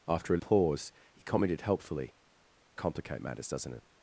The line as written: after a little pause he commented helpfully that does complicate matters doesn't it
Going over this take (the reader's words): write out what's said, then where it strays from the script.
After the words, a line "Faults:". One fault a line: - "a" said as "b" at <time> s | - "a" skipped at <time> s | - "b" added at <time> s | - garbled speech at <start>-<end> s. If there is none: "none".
after a pause he commented helpfully complicate matters doesn't it
Faults:
- "little" skipped at 0.4 s
- "that does" skipped at 2.2 s